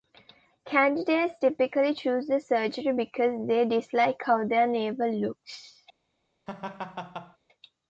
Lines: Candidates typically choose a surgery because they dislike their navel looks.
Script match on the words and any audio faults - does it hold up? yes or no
no